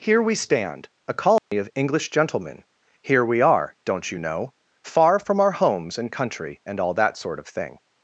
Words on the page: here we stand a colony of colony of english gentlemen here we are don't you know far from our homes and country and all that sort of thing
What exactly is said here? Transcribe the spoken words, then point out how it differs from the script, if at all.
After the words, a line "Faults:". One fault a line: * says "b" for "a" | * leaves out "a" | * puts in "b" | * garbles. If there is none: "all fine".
here we stand a colony of english gentlemen here we are don't you know far from our homes and country and all that sort of thing
Faults:
* leaves out "colony of"